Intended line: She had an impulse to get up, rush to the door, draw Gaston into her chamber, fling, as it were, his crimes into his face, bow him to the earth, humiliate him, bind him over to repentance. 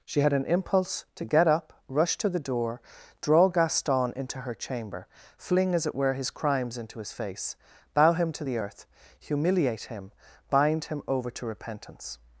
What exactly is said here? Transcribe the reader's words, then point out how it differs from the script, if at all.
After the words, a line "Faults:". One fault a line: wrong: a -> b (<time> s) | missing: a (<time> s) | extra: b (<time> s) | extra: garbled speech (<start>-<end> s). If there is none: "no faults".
She had an impulse to get up, rush to the door, draw Gaston into her chamber, fling, as it were, his crimes into his face, bow him to the earth, humiliate him, bind him over to repentance.
Faults:
no faults